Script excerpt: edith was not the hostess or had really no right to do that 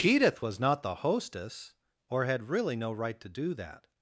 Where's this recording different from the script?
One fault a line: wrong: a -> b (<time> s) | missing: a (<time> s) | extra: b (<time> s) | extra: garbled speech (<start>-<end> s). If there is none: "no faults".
no faults